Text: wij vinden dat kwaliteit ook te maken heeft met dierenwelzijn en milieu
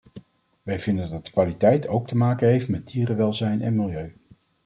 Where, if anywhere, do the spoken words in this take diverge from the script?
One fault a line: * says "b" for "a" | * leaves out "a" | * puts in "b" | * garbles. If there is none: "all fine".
all fine